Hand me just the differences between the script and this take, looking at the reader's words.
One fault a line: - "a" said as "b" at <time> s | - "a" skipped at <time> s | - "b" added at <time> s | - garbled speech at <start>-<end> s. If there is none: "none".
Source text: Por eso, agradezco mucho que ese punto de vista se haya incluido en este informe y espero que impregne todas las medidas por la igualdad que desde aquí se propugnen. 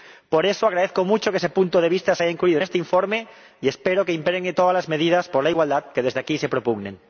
none